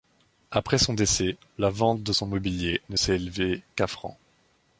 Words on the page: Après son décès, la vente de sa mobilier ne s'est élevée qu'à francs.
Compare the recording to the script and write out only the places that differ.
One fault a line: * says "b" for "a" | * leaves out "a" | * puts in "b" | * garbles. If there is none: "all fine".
* says "son" for "sa"